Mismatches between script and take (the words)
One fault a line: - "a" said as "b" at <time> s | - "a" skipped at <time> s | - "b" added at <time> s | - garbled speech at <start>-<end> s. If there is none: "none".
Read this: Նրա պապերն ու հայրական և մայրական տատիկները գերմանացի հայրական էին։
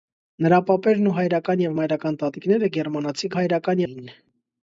none